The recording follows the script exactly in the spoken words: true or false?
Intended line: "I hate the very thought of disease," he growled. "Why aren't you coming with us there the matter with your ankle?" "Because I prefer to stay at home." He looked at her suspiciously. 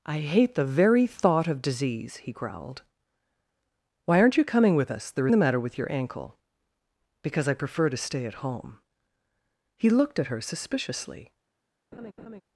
true